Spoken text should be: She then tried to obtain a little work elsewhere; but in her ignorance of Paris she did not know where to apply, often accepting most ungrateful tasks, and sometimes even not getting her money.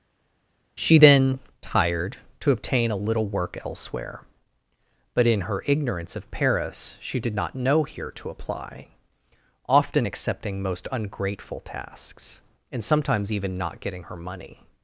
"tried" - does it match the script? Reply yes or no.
no